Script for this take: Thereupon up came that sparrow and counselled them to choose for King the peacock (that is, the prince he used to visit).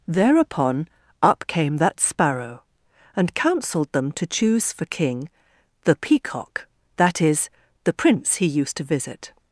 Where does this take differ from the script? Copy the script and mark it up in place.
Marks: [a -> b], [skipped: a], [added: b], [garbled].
Thereupon up came that sparrow and counselled them to choose for King the peacock (that is, the prince he used to visit).